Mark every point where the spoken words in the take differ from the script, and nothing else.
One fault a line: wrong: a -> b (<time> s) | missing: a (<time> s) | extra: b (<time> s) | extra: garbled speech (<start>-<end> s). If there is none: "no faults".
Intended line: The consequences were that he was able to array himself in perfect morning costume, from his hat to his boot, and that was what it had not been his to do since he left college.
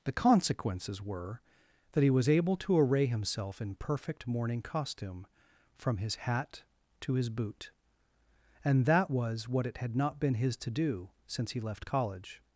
no faults